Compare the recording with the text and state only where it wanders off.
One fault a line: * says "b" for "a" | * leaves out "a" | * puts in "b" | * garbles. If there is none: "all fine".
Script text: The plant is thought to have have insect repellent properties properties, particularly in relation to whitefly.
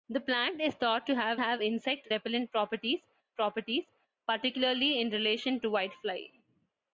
all fine